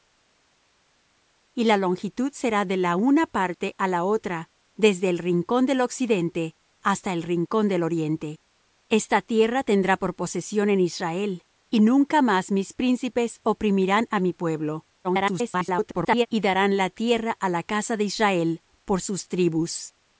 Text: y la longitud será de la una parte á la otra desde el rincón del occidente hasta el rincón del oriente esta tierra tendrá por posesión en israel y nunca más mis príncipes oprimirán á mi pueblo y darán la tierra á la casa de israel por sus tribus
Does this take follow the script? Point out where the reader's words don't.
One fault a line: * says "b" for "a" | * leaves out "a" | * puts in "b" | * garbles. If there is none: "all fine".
* garbles